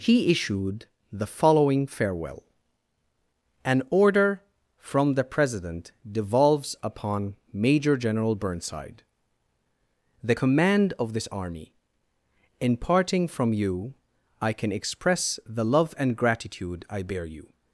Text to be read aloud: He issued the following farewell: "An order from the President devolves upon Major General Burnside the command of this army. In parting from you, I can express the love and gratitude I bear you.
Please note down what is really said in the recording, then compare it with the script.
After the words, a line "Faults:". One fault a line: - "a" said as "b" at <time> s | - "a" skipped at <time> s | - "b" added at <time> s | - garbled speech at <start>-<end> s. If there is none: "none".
He issued the following farewell: "An order from the President devolves upon Major General Burnside the command of this army. In parting from you, I can express the love and gratitude I bear you.
Faults:
none